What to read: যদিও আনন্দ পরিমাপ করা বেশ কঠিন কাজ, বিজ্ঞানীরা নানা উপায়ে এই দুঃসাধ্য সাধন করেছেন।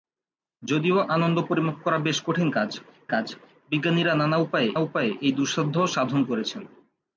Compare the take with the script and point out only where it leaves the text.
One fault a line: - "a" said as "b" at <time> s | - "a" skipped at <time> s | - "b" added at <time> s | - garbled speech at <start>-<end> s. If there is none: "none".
- "কাজ" added at 3.1 s
- "উপায়ে" added at 4.8 s